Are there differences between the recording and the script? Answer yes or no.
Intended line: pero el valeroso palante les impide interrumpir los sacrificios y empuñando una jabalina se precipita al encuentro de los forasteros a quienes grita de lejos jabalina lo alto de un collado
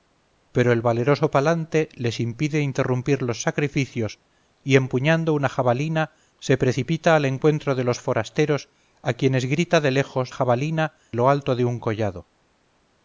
no